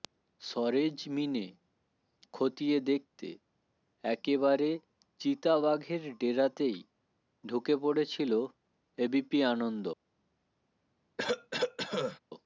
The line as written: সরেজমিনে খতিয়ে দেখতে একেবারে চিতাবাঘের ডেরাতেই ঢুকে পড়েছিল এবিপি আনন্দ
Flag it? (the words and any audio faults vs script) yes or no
yes